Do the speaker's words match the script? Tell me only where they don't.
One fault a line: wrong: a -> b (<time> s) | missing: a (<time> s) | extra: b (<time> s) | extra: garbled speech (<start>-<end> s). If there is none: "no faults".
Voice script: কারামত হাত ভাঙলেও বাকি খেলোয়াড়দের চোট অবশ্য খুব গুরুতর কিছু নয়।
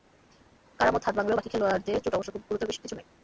no faults